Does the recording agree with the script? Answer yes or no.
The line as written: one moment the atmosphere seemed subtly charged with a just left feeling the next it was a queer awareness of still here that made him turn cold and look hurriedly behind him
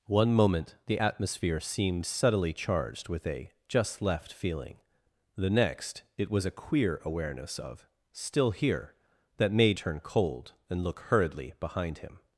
no